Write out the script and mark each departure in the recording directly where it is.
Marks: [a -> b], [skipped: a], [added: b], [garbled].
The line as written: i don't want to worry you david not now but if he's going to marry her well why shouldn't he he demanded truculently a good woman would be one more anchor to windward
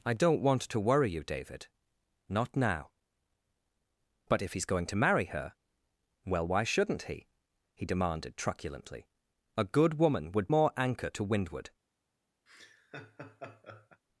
i don't want to worry you david not now but if he's going to marry her well why shouldn't he he demanded truculently a good woman would [skipped: be one] more anchor to windward